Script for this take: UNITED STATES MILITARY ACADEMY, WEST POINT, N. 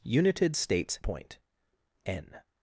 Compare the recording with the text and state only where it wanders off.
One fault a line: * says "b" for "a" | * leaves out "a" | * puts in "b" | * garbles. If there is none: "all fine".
* leaves out "MILITARY ACADEMY WEST"